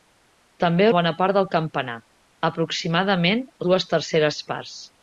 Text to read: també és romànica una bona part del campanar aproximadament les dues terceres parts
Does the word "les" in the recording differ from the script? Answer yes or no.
yes